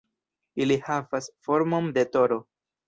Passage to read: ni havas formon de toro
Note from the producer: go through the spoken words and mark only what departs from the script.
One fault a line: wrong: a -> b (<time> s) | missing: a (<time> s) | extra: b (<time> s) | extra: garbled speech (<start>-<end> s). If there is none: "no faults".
wrong: ni -> ili (0.7 s)